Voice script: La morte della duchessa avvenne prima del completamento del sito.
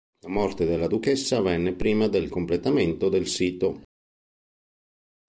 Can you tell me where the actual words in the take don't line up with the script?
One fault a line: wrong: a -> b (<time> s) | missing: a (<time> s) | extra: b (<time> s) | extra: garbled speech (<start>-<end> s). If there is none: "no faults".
no faults